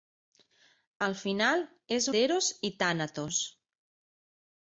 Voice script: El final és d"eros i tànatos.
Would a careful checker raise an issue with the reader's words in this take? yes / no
no